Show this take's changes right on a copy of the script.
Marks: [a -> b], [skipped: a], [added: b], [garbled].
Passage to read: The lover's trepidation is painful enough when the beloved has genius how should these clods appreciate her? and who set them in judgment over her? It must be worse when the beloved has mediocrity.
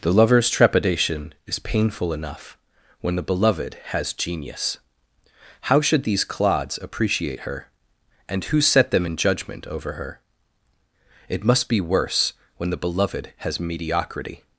The lover's trepidation is painful enough when the beloved has genius how should these clods appreciate her? and who set them in judgment over her? It must be worse when the beloved has mediocrity.